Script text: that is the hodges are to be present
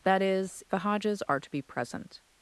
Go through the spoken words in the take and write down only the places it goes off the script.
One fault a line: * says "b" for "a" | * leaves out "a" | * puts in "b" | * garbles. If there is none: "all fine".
all fine